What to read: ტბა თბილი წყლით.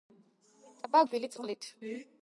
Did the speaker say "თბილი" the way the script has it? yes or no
yes